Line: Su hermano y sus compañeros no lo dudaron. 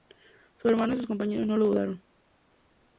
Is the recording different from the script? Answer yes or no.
no